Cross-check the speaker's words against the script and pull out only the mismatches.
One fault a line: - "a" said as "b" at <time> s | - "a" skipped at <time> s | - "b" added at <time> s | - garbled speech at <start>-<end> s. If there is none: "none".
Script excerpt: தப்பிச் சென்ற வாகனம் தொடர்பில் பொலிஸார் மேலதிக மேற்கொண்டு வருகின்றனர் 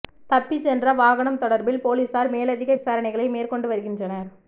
- "விசாரணைகளை" added at 2.7 s